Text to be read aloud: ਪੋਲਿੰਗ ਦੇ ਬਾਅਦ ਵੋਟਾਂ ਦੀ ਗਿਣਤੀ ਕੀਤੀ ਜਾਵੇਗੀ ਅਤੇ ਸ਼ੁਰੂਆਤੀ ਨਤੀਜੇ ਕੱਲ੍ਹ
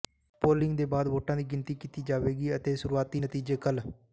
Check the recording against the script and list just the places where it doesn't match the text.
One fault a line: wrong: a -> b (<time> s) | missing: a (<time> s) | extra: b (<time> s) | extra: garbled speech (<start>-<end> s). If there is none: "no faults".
no faults